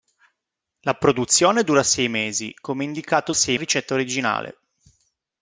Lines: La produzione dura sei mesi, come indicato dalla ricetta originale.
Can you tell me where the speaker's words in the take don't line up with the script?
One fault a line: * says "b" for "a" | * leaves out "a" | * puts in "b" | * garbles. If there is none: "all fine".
* says "sei" for "dalla"